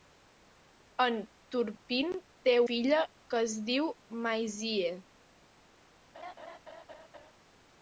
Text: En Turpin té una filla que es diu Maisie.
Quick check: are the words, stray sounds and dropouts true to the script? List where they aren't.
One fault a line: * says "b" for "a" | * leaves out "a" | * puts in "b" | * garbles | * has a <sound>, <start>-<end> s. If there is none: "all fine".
* leaves out "una"
* has a laugh, 6.1-7.3 s